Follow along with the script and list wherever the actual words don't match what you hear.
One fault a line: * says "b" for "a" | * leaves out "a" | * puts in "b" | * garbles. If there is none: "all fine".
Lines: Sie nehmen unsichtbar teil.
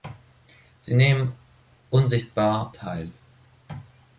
all fine